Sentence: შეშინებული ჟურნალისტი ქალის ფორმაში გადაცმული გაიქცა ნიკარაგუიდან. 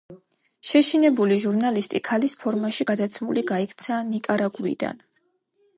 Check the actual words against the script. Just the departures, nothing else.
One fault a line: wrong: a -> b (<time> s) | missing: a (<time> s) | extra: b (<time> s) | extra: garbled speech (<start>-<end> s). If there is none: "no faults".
no faults